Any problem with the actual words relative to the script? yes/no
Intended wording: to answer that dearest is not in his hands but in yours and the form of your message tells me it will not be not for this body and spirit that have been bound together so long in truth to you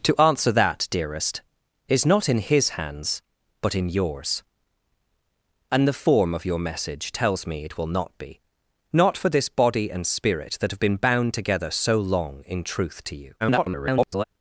yes